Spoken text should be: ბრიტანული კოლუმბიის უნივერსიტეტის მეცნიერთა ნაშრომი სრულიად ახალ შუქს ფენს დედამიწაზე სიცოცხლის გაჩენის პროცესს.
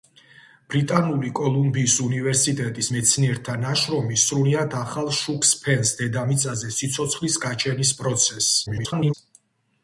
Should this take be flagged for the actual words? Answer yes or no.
yes